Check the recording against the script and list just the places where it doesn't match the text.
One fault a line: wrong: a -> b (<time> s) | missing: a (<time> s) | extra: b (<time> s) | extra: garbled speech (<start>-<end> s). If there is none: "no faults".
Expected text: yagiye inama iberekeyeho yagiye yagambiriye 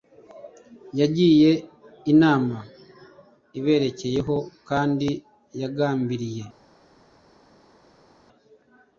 wrong: yagiye -> kandi (4.7 s)